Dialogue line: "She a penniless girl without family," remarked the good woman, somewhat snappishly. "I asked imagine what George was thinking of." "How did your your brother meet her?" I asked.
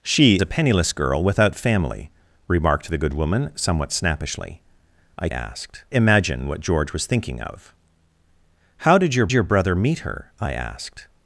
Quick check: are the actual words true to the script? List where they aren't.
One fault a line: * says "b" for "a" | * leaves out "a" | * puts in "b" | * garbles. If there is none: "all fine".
all fine